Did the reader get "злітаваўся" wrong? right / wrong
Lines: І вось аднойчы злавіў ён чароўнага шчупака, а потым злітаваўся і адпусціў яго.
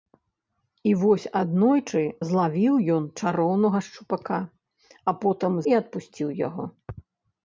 wrong